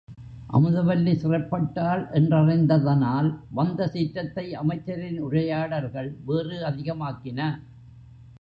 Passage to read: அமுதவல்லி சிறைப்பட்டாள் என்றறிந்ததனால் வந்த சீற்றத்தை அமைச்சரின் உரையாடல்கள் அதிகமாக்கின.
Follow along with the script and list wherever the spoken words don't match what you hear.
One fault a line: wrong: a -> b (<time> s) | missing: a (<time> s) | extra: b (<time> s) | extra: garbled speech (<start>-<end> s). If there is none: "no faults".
extra: வேறு (6.2 s)